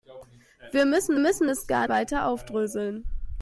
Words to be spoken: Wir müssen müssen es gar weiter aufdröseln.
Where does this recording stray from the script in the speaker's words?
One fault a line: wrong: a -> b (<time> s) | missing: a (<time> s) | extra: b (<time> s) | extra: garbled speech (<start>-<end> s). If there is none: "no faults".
no faults